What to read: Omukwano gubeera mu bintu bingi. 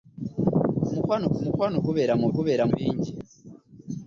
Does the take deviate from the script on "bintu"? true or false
true